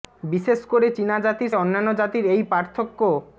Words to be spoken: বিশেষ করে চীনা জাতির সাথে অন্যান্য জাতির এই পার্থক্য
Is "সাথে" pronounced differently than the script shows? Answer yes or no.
yes